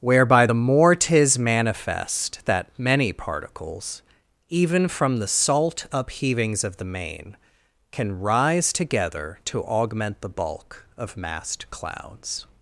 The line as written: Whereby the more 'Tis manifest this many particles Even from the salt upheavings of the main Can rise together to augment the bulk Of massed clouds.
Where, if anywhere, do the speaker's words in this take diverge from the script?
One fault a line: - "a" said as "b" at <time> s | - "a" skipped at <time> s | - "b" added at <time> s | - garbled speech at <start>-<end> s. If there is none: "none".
- "this" said as "that" at 2.4 s